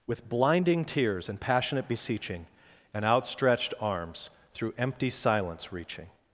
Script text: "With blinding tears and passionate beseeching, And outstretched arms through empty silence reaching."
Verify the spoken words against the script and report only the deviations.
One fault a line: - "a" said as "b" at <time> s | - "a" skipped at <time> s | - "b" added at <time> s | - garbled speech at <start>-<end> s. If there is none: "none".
none